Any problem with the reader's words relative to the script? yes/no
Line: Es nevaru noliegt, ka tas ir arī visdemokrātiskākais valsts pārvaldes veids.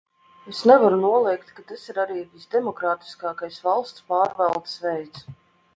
no